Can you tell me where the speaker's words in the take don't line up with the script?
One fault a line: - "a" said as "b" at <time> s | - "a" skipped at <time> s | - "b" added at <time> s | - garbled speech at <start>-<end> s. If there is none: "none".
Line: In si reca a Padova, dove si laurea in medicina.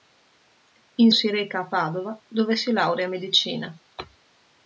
none